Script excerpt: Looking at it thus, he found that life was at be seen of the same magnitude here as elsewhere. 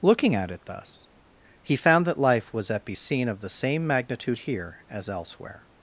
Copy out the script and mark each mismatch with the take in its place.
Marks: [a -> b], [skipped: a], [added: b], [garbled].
Looking at it thus, he found that life was at be seen of the same magnitude here as elsewhere.